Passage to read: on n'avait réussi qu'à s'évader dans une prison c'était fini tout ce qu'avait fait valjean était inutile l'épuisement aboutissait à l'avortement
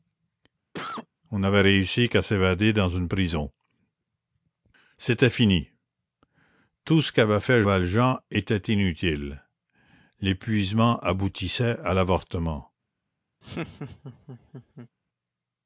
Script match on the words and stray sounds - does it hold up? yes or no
no